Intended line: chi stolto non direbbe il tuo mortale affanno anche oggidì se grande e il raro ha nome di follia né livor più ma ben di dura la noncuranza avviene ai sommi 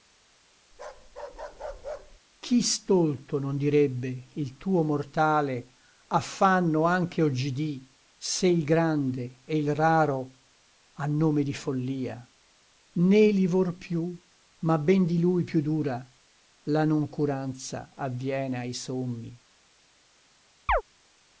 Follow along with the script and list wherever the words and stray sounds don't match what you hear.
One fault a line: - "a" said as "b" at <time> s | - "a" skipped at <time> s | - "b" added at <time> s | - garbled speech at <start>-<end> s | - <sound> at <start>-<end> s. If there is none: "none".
- bark at 0.7-2.2 s
- "il" added at 8.5 s
- "lui più" added at 15.2 s
- chirp at 20.7-20.8 s